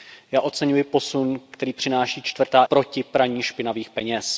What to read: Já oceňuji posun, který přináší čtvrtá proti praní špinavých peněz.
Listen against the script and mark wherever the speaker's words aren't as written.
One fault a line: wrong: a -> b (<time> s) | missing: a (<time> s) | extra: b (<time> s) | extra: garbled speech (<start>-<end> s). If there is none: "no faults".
no faults